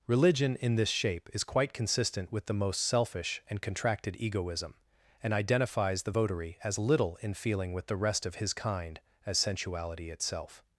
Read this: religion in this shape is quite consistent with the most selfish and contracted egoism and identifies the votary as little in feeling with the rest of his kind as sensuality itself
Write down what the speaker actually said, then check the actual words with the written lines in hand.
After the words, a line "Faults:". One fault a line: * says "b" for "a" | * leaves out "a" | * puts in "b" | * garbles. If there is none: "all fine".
religion in this shape is quite consistent with the most selfish and contracted egoism and identifies the votary as little in feeling with the rest of his kind as sensuality itself
Faults:
all fine